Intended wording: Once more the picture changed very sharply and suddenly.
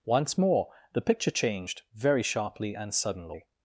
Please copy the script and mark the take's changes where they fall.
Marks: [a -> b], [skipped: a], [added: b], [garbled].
Once more the picture changed very sharply and suddenly.